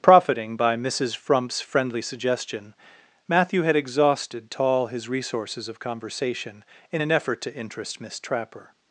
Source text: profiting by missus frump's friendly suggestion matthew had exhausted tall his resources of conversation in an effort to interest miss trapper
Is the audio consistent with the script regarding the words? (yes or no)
yes